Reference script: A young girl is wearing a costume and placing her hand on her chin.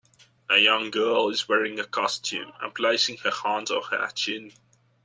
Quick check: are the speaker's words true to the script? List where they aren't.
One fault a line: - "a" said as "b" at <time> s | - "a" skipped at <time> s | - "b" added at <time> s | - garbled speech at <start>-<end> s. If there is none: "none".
none